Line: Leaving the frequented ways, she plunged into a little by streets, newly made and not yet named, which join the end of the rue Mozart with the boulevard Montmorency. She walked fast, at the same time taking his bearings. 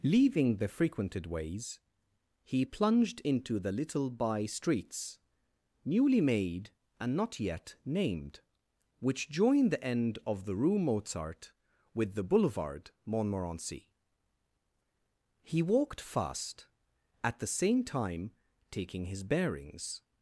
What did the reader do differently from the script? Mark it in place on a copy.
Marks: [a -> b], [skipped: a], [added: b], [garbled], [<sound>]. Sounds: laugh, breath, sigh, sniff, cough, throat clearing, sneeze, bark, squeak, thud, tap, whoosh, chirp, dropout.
Leaving the frequented ways, [she -> he] plunged into [a -> the] little by streets, newly made and not yet named, which join the end of the rue Mozart with the boulevard Montmorency. [She -> He] walked fast, at the same time taking his bearings.